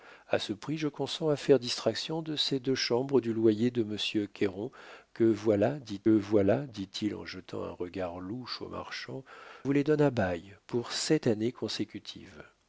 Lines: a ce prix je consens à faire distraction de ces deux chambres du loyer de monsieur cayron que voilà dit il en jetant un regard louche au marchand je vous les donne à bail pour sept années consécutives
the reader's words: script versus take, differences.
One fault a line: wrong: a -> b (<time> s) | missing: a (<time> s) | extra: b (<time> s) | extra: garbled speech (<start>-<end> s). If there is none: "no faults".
extra: voilà dit (6.1 s)
missing: je (9.2 s)